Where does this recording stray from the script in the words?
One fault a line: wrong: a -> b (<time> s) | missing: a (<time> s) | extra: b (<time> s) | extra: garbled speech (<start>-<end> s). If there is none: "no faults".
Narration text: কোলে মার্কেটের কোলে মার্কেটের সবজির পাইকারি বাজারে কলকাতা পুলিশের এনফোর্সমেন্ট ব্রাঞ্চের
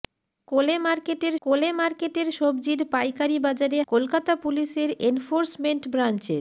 no faults